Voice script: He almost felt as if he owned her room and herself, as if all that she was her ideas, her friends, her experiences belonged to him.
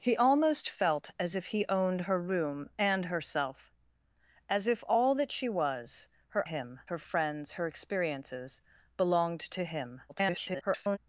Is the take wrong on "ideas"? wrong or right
wrong